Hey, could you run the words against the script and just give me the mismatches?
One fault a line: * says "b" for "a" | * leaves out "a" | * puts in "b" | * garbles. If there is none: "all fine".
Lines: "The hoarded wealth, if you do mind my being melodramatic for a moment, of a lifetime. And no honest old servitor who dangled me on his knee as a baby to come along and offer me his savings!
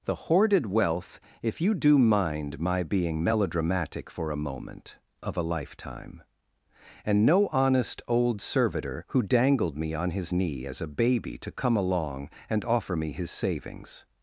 all fine